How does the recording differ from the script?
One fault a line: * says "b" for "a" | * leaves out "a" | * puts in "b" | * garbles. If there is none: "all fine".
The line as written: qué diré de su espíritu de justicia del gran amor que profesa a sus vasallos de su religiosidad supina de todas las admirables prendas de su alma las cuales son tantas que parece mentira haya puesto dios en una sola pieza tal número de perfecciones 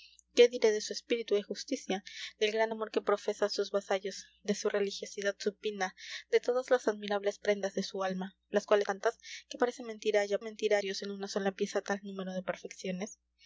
* leaves out "son"
* says "mentira" for "puesto"